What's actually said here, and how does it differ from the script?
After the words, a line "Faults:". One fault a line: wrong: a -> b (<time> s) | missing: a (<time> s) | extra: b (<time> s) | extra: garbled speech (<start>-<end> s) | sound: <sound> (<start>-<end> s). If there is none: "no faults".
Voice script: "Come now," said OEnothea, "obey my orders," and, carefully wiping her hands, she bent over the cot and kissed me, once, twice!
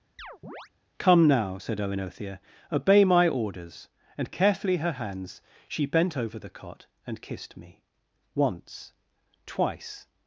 "Come now," said OEnothea, "obey my orders," and, carefully her hands, she bent over the cot and kissed me, once, twice!
Faults:
sound: chirp (0.2-0.7 s)
missing: wiping (4.8 s)